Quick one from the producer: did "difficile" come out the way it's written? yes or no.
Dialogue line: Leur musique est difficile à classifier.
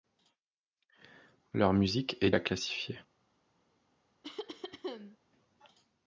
no